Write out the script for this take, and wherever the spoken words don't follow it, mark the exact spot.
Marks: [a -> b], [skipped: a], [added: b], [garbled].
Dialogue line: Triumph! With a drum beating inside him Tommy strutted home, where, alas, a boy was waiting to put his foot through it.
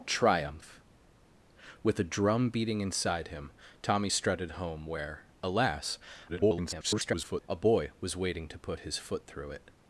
Triumph! With a drum beating inside him Tommy strutted home, where, alas, [garbled] a boy was waiting to put his foot through it.